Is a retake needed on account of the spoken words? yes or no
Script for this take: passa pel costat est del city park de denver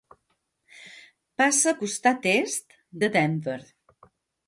yes